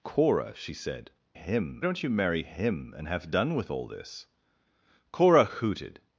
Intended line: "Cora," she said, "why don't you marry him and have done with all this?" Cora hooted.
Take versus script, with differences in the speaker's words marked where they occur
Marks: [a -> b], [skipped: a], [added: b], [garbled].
"Cora," she said, ["why -> him] don't you marry him and have done with all this?" Cora hooted.